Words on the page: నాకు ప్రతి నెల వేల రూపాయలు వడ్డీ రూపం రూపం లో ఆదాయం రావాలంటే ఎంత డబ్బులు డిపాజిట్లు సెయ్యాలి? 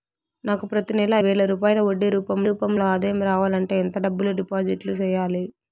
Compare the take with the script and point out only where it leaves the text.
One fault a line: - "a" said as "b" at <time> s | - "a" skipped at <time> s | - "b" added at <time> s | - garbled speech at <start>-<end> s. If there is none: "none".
none